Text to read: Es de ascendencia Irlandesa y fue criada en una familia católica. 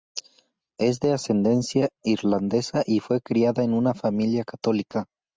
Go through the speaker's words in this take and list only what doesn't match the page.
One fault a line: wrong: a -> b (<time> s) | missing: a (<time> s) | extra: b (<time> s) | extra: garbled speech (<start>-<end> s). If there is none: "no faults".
no faults